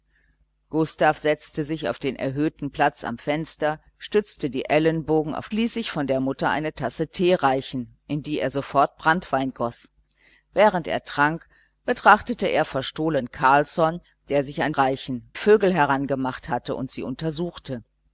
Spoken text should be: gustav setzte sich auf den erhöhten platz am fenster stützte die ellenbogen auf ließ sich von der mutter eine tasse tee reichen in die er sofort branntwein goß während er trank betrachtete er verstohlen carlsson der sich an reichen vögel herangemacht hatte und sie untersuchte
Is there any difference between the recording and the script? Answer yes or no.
no